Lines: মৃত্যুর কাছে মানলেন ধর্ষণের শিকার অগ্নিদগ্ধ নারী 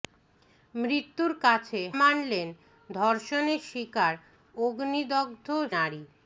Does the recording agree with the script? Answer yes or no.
yes